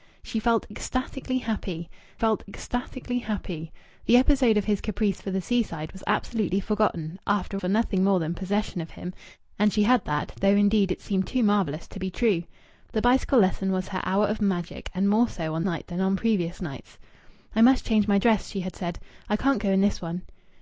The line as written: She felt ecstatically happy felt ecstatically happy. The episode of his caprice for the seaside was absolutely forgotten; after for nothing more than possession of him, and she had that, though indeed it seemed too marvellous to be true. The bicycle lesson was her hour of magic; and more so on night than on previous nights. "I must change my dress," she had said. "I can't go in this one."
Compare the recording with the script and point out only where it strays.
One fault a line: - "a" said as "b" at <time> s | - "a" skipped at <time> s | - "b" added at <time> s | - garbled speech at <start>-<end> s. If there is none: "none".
none